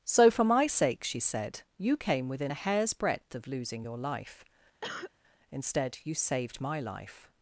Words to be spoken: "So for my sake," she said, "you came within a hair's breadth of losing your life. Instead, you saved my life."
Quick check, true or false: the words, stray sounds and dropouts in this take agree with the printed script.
false